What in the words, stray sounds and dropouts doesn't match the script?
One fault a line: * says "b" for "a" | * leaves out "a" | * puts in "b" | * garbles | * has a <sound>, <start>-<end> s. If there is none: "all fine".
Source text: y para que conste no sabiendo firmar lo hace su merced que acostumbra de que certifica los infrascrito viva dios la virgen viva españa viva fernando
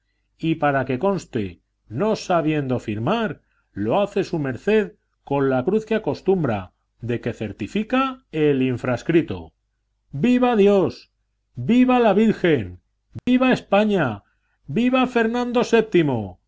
* puts in "con la cruz"
* says "el" for "los"
* puts in "viva"
* has a dropout, 13.2-13.3 s